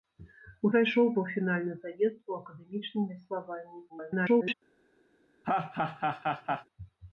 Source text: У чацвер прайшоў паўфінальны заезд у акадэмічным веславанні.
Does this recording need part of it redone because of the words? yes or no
yes